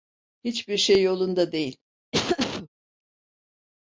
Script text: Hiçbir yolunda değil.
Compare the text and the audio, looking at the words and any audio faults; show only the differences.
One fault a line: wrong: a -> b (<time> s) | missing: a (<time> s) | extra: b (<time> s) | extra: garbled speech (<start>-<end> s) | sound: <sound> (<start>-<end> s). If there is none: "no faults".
extra: şey (0.8 s)
sound: laugh (2.1-2.7 s)